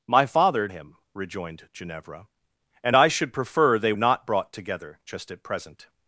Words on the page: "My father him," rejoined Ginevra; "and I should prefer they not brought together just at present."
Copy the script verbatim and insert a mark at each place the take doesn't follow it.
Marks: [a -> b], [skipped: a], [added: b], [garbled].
"My father him," rejoined Ginevra; "and I should prefer they not brought together just at present."